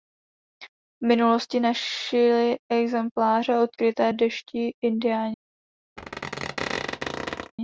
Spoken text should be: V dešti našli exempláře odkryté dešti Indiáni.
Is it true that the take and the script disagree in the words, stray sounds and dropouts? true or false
true